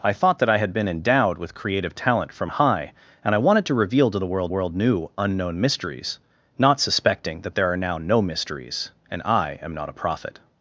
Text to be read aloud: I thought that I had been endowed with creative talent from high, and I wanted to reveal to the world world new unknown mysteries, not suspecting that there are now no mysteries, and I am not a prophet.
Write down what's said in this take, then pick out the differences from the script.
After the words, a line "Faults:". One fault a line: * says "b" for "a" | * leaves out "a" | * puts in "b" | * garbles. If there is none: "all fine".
I thought that I had been endowed with creative talent from high, and I wanted to reveal to the world world new unknown mysteries, not suspecting that there are now no mysteries, and I am not a prophet.
Faults:
all fine